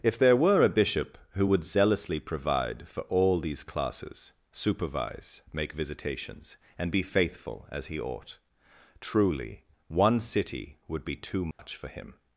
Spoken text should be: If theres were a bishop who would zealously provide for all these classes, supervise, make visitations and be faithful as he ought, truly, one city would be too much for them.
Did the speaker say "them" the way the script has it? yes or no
no